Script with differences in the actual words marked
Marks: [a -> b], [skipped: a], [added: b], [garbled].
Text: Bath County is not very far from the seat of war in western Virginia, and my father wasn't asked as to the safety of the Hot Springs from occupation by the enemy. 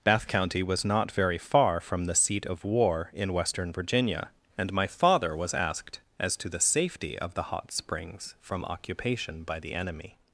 Bath County [is -> was] not very far from the seat of war in western Virginia, and my father [wasn't -> was] asked as to the safety of the Hot Springs from occupation by the enemy.